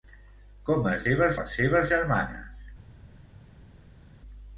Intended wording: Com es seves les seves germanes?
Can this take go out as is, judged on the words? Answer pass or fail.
pass